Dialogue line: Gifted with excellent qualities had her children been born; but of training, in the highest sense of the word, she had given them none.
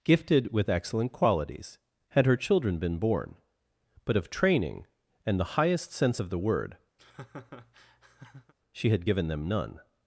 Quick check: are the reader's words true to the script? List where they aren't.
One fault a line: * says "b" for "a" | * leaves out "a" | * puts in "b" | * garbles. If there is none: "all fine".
* says "and" for "in"